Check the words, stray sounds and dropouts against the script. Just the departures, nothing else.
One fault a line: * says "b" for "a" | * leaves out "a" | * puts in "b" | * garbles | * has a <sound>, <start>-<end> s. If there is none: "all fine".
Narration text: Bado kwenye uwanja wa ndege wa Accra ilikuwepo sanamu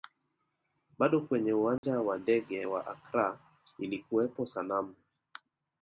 * has a dropout, 1.8-1.8 s